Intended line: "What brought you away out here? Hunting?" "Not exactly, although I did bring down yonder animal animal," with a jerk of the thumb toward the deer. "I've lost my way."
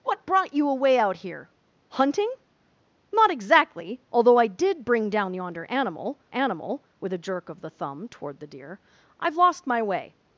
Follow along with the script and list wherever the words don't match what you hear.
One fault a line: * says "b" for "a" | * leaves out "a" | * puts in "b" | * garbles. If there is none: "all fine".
all fine